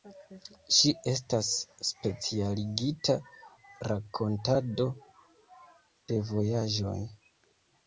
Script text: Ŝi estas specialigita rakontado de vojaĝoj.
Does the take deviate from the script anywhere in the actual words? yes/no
no